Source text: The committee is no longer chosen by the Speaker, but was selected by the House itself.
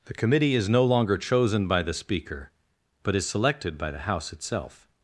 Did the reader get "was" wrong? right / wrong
wrong